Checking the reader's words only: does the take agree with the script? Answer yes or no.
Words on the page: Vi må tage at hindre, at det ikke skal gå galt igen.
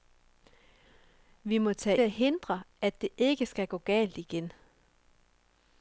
yes